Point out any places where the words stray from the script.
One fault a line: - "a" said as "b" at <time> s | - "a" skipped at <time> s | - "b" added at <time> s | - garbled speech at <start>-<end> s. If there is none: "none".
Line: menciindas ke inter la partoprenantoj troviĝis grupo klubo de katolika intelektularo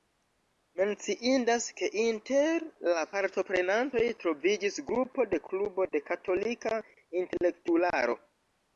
- "de" added at 5.3 s